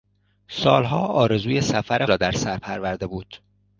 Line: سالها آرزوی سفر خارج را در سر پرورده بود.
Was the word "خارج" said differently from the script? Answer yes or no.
yes